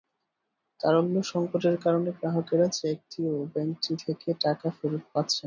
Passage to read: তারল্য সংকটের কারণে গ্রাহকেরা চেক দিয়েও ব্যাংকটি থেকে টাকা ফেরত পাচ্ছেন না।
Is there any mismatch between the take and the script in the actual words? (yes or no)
no